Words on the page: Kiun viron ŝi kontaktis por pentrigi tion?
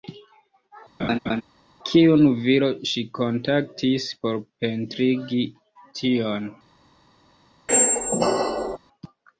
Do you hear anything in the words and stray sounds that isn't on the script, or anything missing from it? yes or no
yes